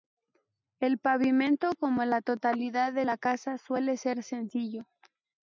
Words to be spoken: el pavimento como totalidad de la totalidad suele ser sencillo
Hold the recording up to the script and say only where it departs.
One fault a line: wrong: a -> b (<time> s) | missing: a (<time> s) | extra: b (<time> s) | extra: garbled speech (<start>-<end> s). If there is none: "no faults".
extra: la (2.0 s)
wrong: totalidad -> casa (3.2 s)